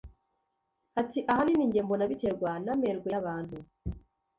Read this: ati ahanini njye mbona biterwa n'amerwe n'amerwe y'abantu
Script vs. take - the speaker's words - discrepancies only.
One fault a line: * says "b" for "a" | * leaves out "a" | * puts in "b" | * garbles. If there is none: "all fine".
* leaves out "n'amerwe"